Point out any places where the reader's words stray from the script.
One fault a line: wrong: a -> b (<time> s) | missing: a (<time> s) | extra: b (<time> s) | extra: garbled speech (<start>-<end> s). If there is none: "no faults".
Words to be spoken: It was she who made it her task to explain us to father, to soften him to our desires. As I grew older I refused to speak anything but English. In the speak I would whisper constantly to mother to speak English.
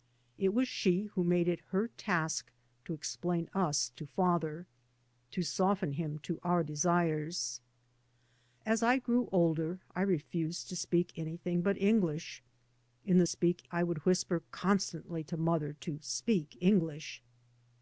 no faults